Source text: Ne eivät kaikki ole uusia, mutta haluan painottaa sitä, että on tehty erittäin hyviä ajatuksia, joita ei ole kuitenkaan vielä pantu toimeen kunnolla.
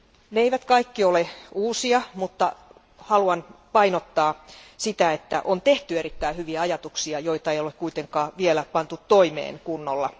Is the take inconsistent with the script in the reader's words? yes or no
no